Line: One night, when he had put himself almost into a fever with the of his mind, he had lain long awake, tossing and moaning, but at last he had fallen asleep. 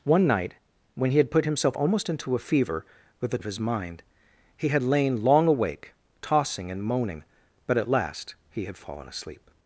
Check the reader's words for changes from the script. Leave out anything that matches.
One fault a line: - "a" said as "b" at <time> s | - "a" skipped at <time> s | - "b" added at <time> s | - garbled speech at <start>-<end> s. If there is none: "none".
none